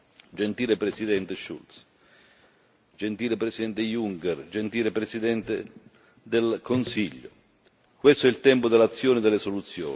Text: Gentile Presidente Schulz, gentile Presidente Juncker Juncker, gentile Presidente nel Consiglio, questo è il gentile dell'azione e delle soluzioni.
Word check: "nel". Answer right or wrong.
wrong